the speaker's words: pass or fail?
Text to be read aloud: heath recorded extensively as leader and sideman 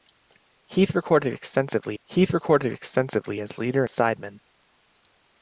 fail